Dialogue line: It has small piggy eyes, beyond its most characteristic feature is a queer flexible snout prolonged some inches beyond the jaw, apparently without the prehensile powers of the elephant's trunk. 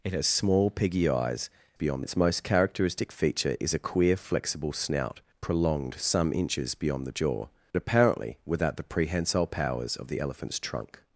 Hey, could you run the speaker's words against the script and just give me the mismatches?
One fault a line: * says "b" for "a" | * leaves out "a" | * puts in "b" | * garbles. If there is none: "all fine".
all fine